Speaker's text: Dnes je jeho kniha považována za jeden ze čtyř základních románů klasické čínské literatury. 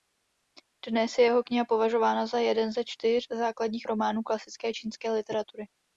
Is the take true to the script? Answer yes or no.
yes